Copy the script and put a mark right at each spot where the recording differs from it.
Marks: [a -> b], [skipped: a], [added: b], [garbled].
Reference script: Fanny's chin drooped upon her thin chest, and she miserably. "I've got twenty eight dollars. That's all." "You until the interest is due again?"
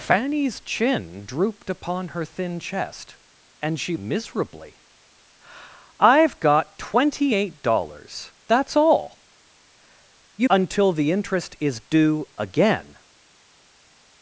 Fanny's chin drooped upon her thin chest, and she miserably. "I've got twenty eight dollars. That's all." "You until the interest is due again?"